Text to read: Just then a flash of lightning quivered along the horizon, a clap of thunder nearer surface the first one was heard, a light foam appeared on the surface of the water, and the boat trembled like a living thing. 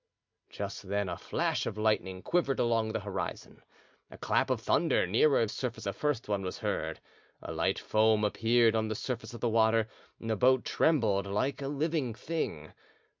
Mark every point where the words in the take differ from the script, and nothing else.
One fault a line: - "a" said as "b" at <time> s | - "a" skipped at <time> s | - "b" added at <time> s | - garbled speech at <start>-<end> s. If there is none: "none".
none